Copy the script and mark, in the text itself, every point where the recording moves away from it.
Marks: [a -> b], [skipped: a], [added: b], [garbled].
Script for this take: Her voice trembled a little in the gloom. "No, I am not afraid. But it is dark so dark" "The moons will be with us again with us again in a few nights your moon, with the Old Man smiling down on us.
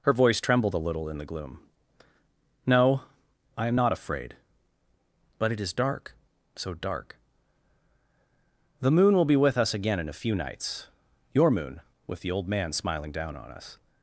Her voice trembled a little in the gloom. "No, I am not afraid. But it is dark so dark" "The [moons -> moon] will be with us again [skipped: with us again] in a few nights your moon, with the Old Man smiling down on us.